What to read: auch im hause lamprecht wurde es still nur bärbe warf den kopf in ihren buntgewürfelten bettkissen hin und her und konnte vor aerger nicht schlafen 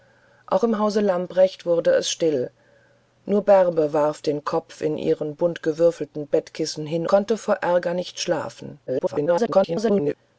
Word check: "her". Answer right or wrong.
wrong